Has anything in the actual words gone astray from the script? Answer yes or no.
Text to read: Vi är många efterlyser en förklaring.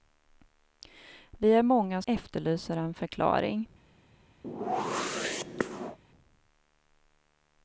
no